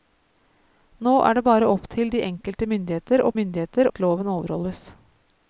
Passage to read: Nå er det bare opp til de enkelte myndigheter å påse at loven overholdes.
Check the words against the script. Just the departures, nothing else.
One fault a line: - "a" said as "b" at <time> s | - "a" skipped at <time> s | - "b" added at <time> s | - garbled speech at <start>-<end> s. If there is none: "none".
- "påse" said as "myndigheter" at 3.4 s